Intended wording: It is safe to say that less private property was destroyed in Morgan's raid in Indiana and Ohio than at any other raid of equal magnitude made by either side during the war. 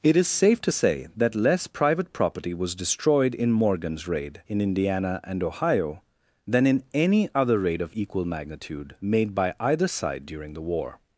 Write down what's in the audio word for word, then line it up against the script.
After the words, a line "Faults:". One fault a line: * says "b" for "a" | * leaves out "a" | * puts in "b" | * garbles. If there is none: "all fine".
It is safe to say that less private property was destroyed in Morgan's raid in Indiana and Ohio than in any other raid of equal magnitude made by either side during the war.
Faults:
* says "in" for "at"